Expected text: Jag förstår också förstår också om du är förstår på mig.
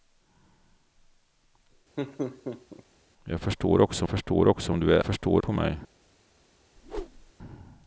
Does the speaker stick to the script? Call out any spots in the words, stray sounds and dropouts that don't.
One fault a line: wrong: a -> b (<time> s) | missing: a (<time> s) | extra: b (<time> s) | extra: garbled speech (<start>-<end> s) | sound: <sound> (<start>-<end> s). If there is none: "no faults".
sound: laugh (2.0-2.8 s)
sound: whoosh (6.8-7.3 s)